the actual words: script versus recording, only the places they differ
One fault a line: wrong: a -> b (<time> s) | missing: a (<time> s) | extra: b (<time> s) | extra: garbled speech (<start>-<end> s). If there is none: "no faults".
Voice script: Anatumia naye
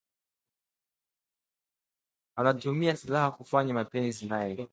extra: silaha kufanya mapenzi (2.9 s)